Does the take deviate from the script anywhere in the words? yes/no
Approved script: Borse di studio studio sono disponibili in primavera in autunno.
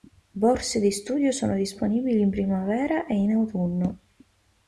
yes